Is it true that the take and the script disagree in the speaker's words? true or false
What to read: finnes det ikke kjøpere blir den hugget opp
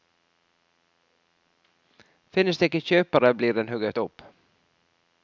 false